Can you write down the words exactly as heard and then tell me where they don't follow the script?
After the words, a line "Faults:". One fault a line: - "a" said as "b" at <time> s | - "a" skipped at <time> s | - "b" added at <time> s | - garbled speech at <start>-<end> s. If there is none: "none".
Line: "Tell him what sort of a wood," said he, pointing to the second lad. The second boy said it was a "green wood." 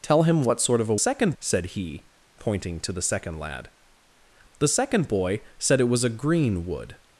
"Tell him what sort of a second," said he, pointing to the second lad. The second boy said it was a "green wood."
Faults:
- "wood" said as "second" at 0.9 s